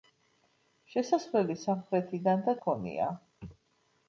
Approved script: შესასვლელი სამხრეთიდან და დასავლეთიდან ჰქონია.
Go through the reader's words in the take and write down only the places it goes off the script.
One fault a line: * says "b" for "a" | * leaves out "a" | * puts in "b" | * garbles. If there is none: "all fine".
* leaves out "დასავლეთიდან"